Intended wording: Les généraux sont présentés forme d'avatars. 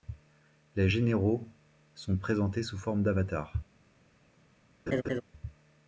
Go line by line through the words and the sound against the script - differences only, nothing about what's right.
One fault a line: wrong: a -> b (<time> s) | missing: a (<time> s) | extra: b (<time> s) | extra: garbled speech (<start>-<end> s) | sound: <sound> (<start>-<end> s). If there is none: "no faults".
extra: sous (2.6 s)
sound: laugh (4.9-5.2 s)